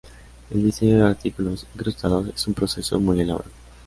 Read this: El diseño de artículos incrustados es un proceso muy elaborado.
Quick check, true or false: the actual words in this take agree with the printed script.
true